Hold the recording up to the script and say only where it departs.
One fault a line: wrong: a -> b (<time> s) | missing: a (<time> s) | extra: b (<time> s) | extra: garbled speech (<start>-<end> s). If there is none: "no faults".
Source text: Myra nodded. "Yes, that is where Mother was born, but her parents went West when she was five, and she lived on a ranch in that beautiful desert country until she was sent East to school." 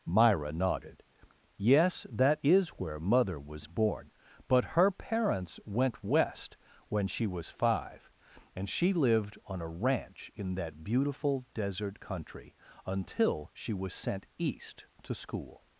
no faults